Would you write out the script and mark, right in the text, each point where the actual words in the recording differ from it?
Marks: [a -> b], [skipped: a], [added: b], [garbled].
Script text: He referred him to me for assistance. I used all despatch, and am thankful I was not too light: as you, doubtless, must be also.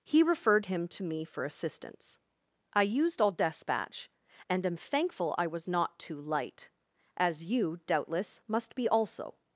He referred him to me for assistance. I used all despatch, and am thankful I was not too light: as you, doubtless, must be also.